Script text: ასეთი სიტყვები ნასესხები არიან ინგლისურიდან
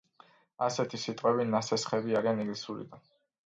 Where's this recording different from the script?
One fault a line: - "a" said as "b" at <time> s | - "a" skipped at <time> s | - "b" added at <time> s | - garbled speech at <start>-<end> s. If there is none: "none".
none